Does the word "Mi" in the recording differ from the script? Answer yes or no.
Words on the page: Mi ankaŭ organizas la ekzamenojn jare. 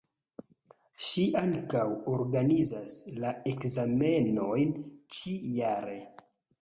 yes